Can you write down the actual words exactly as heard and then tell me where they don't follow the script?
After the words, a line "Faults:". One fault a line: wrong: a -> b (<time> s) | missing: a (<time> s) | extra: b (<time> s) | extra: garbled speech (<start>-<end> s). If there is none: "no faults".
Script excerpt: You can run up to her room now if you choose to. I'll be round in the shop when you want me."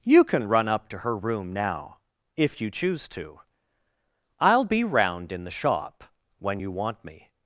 You can run up to her room now if you choose to. I'll be round in the shop when you want me."
Faults:
no faults